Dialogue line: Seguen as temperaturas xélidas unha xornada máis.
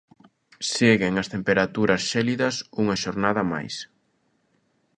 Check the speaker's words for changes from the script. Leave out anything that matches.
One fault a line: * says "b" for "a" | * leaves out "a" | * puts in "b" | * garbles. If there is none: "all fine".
all fine